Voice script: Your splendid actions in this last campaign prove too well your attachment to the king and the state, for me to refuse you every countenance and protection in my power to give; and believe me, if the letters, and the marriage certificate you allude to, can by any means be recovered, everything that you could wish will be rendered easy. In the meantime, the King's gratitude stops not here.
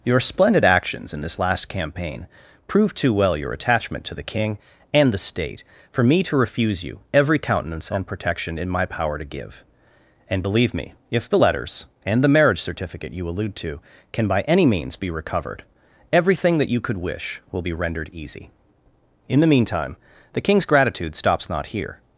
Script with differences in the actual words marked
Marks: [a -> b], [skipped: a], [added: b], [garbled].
Your splendid actions in this last campaign prove too well your attachment to the king and the state, for me to refuse you every countenance and protection in my power to give; and believe me, if the letters, and the marriage certificate you allude to, can by any means be recovered, everything that you could wish will be rendered easy. In the meantime, the King's gratitude stops not here.